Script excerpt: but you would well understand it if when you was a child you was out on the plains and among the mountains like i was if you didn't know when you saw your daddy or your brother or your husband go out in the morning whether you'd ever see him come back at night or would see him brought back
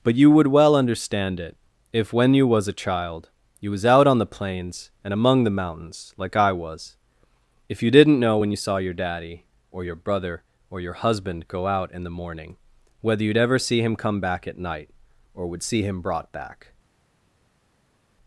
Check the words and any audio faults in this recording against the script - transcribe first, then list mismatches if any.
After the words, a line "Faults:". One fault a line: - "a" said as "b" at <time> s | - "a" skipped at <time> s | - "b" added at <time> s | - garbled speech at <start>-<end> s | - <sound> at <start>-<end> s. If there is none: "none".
but you would well understand it if when you was a child you was out on the plains and among the mountains like i was if you didn't know when you saw your daddy or your brother or your husband go out in the morning whether you'd ever see him come back at night or would see him brought back
Faults:
none